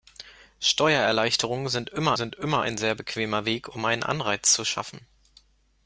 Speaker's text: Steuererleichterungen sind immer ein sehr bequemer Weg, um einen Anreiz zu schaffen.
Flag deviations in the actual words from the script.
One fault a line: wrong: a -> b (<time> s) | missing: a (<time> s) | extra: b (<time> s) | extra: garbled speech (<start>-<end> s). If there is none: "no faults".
extra: sind immer (2.1 s)